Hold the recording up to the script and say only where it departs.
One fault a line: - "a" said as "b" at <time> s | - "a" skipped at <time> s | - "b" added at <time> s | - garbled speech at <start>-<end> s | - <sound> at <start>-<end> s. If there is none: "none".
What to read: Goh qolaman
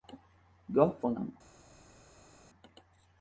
none